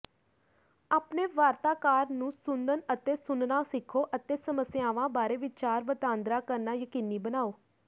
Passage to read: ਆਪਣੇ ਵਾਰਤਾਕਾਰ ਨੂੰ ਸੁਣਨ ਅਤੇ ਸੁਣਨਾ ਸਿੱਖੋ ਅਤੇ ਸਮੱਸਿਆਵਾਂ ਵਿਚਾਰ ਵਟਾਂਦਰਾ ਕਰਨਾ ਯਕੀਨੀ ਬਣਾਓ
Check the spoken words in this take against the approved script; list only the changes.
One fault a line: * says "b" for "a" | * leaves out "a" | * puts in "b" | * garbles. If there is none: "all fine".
* puts in "ਬਾਰੇ"